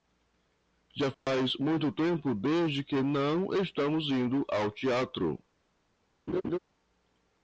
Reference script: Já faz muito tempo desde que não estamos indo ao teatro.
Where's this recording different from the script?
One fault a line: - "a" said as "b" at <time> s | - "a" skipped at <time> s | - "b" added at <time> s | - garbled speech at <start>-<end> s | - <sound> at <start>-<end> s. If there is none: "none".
- dropout at 1.1-1.3 s
- laugh at 6.3-6.6 s